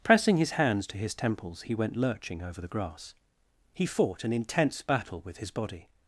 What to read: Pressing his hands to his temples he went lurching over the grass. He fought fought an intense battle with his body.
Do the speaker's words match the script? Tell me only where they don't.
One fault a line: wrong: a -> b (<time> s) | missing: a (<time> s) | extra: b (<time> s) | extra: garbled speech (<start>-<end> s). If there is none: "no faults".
missing: fought (4.2 s)